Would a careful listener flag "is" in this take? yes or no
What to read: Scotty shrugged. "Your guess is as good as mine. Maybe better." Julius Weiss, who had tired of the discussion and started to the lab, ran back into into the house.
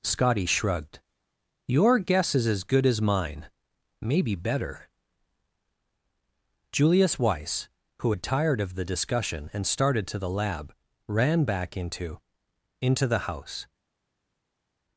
no